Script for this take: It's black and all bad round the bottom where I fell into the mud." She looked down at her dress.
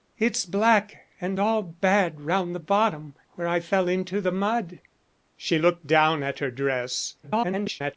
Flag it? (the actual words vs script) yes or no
yes